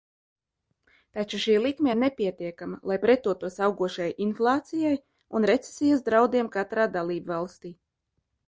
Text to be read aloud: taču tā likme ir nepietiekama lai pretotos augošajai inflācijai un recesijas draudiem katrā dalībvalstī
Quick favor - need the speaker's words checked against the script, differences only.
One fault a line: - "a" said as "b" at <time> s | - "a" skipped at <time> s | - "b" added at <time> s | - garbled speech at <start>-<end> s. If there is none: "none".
- "tā" said as "šī" at 1.4 s